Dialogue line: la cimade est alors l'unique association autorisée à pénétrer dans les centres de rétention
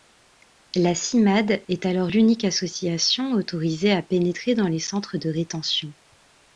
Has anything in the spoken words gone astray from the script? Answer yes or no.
no